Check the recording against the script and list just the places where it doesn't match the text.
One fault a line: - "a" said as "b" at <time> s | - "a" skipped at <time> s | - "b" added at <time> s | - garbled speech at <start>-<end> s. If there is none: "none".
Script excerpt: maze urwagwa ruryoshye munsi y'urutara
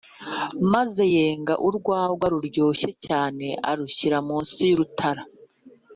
- "yenga" added at 1.1 s
- "cyane arushyira" added at 3.1 s